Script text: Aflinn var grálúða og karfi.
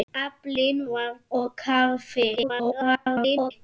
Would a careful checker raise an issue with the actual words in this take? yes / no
yes